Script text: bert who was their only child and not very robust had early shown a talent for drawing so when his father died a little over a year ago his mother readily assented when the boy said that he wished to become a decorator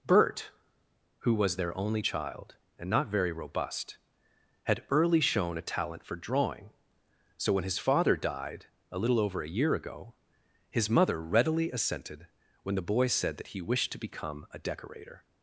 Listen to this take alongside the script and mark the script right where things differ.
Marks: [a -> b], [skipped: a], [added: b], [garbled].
bert who was their only child and not very robust had early shown a talent for drawing so when his father died a little over a year ago his mother readily assented when the boy said that he wished to become a decorator